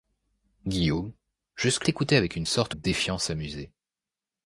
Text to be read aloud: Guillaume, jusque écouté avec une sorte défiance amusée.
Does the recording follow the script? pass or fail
pass